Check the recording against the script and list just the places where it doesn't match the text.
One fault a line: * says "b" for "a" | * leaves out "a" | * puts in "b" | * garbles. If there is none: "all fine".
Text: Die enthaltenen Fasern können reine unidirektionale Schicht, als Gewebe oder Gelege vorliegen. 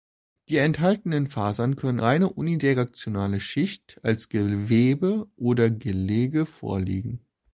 all fine